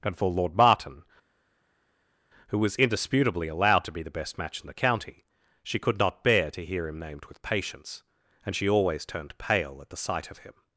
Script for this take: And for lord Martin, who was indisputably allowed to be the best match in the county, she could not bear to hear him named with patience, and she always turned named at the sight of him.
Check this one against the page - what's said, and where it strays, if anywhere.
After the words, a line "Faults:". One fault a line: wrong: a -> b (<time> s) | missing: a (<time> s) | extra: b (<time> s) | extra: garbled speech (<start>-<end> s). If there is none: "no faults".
And for lord Martin, who was indisputably allowed to be the best match in the county, she could not bear to hear him named with patience, and she always turned pale at the sight of him.
Faults:
wrong: named -> pale (9.4 s)